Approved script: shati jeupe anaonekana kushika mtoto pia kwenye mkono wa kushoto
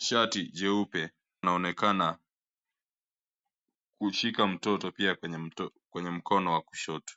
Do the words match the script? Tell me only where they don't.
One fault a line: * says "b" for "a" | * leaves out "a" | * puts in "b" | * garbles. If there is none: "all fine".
all fine